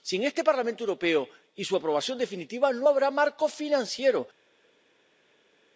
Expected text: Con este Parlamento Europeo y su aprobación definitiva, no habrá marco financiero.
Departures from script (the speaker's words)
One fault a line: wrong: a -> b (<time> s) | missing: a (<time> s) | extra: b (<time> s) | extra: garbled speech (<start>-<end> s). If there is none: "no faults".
wrong: Con -> Sin (0.0 s)